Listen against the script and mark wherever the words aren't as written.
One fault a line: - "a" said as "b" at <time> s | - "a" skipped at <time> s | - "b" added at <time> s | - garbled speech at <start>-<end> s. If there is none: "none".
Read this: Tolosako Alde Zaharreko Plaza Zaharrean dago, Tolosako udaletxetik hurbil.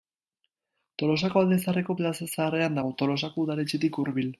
none